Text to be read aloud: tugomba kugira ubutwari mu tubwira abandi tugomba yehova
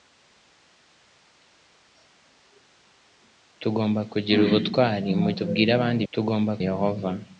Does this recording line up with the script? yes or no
yes